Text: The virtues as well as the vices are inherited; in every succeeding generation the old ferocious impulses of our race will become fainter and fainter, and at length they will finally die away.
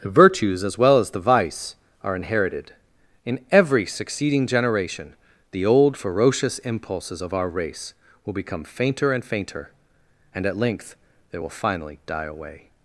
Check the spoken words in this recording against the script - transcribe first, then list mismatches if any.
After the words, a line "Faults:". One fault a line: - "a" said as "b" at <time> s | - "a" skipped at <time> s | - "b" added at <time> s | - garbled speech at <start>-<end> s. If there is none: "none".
The virtues as well as the vice are inherited; in every succeeding generation the old ferocious impulses of our race will become fainter and fainter, and at length they will finally die away.
Faults:
- "vices" said as "vice" at 1.2 s